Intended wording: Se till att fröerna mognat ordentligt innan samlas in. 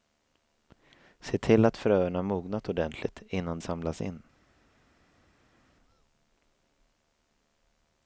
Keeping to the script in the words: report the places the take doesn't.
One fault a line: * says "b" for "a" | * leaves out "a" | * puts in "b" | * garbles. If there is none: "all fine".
all fine